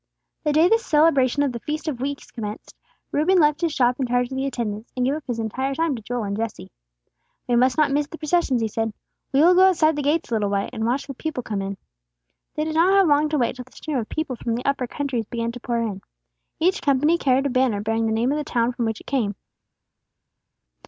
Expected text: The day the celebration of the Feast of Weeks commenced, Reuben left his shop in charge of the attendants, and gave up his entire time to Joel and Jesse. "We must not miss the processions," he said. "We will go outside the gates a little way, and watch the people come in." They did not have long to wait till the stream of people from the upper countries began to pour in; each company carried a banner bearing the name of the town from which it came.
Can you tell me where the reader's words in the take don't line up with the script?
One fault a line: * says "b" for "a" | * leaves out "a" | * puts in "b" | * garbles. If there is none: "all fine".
all fine